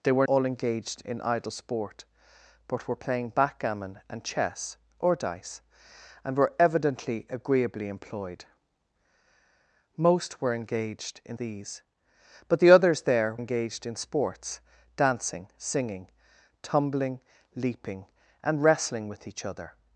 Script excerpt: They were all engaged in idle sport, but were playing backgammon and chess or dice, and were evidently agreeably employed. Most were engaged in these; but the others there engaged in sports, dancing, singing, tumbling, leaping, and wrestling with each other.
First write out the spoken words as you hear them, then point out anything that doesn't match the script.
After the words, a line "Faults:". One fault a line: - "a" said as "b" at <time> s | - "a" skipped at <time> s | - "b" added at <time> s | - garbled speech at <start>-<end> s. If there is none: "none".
They were all engaged in idle sport, but were playing backgammon and chess or dice, and were evidently agreeably employed. Most were engaged in these; but the others there engaged in sports, dancing, singing, tumbling, leaping, and wrestling with each other.
Faults:
none